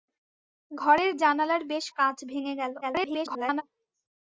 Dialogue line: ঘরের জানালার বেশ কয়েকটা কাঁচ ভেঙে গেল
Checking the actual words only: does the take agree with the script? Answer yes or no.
no